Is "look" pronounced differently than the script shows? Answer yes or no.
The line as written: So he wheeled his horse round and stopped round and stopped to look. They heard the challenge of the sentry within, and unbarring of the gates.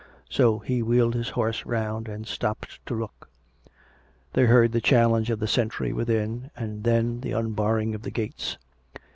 no